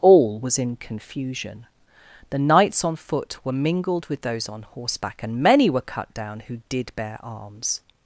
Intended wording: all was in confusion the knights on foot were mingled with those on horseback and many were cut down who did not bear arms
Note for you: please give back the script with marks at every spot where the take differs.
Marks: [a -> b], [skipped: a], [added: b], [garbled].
all was in confusion the knights on foot were mingled with those on horseback and many were cut down who did [skipped: not] bear arms